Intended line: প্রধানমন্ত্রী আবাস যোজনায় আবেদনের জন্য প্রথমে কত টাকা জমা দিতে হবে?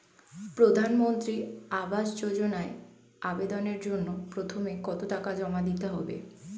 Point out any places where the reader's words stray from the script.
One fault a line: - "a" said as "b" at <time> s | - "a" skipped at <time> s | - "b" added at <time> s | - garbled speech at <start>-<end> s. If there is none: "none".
none